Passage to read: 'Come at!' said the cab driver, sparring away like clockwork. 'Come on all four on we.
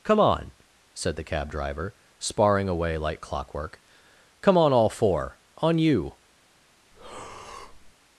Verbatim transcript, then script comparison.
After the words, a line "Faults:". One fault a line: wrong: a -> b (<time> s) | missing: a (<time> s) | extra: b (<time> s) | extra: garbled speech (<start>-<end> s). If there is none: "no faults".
'Come on!' said the cab driver, sparring away like clockwork. 'Come on all four on you.
Faults:
wrong: at -> on (0.2 s)
wrong: we -> you (5.8 s)